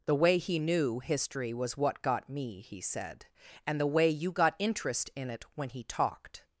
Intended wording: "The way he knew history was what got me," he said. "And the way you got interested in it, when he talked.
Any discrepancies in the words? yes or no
yes